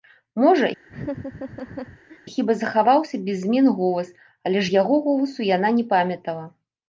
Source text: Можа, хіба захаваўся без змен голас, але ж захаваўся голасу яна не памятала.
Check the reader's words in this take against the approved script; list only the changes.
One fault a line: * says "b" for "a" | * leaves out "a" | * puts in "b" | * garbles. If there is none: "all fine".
* says "яго" for "захаваўся"